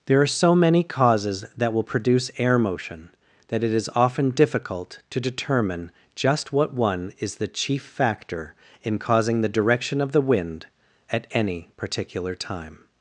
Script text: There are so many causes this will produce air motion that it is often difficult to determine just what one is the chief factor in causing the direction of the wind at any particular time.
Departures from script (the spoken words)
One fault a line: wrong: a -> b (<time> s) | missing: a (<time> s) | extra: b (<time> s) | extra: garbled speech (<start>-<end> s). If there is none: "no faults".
wrong: this -> that (1.6 s)